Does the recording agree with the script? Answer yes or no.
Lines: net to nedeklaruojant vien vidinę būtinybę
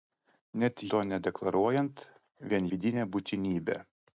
yes